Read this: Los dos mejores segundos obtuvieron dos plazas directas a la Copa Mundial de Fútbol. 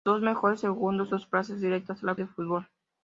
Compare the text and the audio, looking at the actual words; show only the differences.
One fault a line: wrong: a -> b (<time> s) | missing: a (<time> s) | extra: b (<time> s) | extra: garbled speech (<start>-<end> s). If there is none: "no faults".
missing: obtuvieron (1.1 s)
missing: Copa Mundial (2.1 s)